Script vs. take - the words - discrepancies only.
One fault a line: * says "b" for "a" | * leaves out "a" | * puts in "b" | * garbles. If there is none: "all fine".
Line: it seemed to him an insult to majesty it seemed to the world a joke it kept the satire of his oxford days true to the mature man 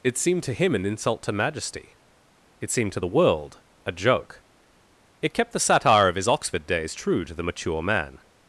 all fine